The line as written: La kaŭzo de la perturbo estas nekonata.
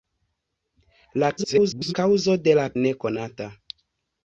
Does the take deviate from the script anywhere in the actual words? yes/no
yes